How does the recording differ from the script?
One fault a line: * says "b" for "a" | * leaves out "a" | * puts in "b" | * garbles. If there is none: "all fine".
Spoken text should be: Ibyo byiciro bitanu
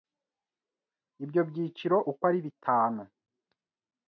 * puts in "uko ari"